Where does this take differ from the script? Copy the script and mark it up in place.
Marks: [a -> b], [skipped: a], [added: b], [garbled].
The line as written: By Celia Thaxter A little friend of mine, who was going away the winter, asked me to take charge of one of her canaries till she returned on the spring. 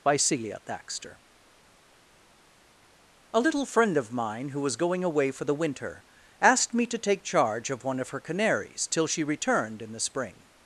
By Celia Thaxter A little friend of mine, who was going away [added: for] the winter, asked me to take charge of one of her canaries till she returned [on -> in] the spring.